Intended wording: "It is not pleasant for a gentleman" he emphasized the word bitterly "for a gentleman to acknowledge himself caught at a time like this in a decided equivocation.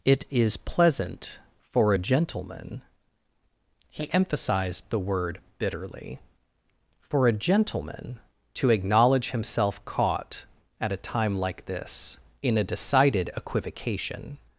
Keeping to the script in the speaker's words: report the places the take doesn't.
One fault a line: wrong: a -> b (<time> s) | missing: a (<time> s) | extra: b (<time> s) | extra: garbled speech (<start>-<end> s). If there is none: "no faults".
missing: not (0.6 s)